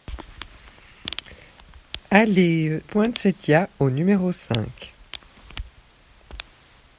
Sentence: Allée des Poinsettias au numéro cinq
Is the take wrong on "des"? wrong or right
wrong